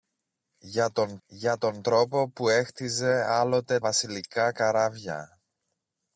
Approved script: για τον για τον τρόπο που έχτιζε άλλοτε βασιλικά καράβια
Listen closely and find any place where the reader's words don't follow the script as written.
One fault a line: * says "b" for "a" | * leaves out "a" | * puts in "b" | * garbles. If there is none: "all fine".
all fine